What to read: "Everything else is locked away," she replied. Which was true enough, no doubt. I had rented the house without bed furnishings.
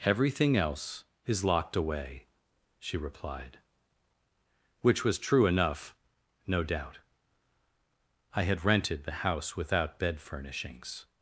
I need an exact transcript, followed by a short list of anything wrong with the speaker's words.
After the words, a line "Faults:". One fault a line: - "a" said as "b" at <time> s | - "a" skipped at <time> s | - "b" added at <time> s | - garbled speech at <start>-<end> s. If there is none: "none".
"Everything else is locked away," she replied. Which was true enough, no doubt. I had rented the house without bed furnishings.
Faults:
none